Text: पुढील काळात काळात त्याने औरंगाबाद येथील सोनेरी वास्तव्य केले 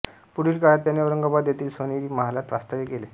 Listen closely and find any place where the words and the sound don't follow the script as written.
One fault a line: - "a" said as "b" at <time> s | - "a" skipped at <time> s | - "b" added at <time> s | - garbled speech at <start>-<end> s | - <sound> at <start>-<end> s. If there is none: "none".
- "काळात" skipped at 0.8 s
- "महालात" added at 2.1 s